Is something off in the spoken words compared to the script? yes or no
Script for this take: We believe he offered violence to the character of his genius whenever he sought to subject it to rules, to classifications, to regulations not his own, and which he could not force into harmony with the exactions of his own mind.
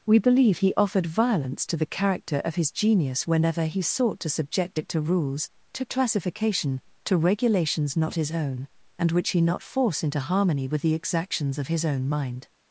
yes